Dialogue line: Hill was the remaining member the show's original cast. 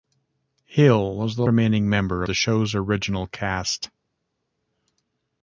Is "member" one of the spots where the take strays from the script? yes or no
no